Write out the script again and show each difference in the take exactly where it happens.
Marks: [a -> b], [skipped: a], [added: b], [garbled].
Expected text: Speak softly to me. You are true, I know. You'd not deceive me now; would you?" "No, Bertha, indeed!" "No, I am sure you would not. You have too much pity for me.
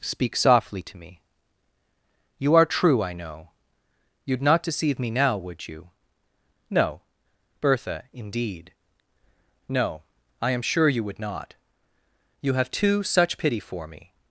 Speak softly to me. You are true, I know. You'd not deceive me now; would you?" "No, Bertha, indeed!" "No, I am sure you would not. You have too [much -> such] pity for me.